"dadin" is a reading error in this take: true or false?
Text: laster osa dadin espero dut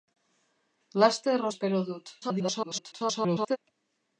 true